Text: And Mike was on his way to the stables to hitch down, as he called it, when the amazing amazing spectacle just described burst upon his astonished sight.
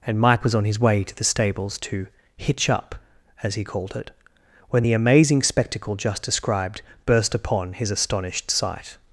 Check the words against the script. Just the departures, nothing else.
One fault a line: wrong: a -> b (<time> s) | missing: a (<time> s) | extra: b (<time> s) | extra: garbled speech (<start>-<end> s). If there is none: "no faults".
wrong: down -> up (2.7 s)
missing: amazing (5.4 s)